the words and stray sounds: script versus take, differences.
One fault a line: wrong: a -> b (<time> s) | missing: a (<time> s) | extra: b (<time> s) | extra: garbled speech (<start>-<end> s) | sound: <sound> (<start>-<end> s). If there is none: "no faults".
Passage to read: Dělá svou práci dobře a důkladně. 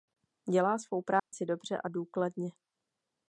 sound: dropout (1.2-1.3 s)